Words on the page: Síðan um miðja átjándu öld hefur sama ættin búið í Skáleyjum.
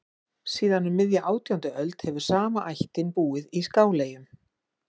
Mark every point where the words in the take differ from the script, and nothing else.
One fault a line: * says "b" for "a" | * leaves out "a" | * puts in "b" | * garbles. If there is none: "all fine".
all fine